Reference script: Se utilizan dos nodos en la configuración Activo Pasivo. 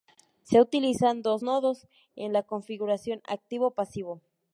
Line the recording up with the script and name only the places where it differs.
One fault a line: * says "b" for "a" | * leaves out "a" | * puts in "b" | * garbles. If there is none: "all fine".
all fine